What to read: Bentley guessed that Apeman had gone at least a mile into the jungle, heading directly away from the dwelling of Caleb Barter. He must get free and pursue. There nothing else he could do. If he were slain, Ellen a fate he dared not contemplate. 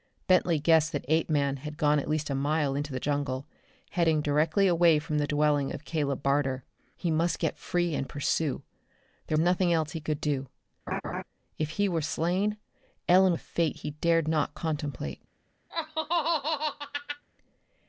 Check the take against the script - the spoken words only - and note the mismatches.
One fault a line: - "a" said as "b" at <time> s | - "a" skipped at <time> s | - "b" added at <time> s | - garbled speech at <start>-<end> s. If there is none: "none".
none